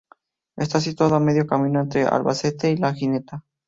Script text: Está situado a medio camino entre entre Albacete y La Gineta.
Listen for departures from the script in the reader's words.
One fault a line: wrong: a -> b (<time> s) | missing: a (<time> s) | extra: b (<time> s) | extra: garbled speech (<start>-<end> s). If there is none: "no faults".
missing: entre (2.1 s)